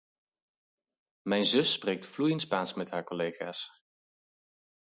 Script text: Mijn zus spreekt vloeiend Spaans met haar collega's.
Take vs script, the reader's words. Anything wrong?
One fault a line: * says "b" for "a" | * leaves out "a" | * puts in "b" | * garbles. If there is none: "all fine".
all fine